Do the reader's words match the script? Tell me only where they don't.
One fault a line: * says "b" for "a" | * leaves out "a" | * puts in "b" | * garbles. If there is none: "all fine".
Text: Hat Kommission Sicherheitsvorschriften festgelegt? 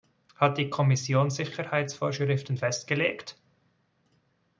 * puts in "die"